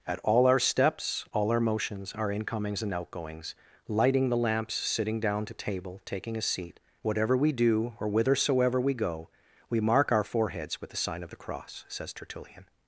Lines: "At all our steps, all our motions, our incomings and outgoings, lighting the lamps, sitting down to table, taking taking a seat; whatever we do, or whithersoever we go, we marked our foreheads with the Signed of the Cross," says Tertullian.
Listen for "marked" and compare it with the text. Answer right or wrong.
wrong